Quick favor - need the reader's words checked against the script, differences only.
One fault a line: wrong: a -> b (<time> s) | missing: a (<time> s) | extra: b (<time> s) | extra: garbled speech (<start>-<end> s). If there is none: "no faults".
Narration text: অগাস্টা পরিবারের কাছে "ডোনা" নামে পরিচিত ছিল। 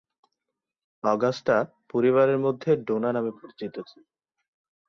wrong: কাছে -> মধ্যে (2.4 s)